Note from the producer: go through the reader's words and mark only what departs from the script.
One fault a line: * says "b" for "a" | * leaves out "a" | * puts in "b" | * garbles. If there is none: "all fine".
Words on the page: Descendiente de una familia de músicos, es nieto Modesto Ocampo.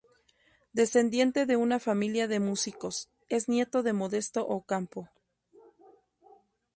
* puts in "de"